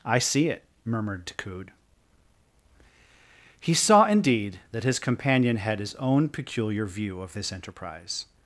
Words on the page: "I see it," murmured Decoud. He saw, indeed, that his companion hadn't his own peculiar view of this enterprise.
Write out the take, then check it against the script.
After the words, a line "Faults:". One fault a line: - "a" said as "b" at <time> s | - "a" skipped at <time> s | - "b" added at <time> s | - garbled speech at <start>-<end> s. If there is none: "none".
"I see it," murmured Decoud. He saw, indeed, that his companion had his own peculiar view of this enterprise.
Faults:
- "hadn't" said as "had" at 5.6 s